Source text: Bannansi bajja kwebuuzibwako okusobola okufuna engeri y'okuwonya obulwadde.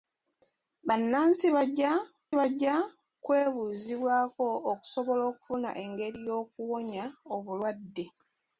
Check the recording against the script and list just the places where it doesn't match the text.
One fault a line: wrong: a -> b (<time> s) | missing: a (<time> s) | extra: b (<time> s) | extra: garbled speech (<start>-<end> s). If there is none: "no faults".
extra: bajja (2.4 s)